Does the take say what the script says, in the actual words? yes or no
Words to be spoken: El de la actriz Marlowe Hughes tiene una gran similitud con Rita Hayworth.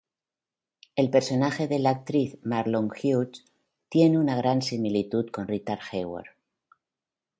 no